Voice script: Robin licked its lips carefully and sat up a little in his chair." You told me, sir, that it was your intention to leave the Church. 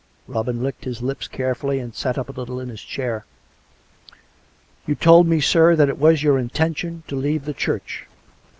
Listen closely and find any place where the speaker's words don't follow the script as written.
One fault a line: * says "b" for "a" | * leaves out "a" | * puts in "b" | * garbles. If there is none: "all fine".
* says "his" for "its"